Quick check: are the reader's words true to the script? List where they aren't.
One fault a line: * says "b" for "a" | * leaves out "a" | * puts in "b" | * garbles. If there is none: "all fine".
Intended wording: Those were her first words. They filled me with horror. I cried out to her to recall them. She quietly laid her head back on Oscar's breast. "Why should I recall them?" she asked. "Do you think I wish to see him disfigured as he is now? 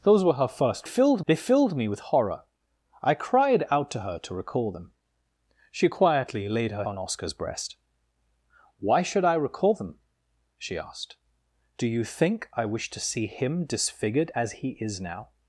* says "filled" for "words"
* leaves out "head back"